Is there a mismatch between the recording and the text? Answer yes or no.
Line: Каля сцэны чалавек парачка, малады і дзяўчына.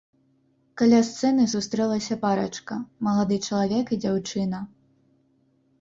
yes